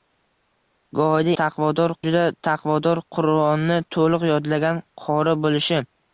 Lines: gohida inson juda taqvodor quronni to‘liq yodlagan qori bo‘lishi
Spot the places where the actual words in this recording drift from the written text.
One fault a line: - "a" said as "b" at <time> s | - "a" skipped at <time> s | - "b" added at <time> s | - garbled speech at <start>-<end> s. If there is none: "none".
- "inson" said as "taqvodor" at 1.4 s